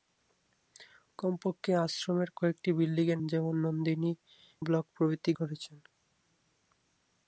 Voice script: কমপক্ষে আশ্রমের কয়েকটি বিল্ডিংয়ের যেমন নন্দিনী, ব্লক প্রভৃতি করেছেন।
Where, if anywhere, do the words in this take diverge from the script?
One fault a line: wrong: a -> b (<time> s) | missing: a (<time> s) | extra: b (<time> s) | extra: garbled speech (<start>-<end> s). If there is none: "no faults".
no faults